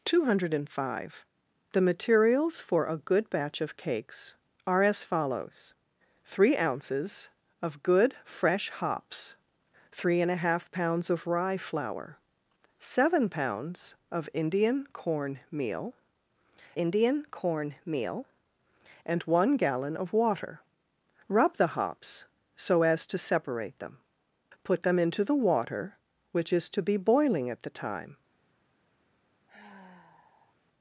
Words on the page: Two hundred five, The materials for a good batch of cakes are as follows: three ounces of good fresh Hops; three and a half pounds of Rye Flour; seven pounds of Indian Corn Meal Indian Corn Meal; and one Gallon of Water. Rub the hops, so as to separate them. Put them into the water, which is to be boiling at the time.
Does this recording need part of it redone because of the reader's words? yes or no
no